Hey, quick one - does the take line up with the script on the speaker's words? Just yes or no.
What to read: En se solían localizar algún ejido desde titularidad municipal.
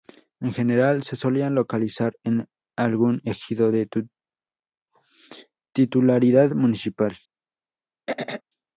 no